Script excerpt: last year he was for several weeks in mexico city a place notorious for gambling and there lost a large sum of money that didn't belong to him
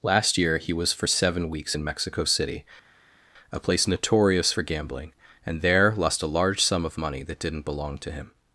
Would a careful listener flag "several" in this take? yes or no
yes